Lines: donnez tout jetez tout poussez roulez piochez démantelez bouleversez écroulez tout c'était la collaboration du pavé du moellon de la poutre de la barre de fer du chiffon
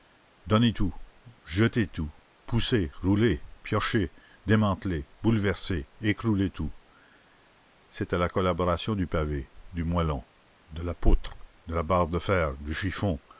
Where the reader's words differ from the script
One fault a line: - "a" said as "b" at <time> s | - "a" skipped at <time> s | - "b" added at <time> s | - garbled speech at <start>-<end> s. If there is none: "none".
none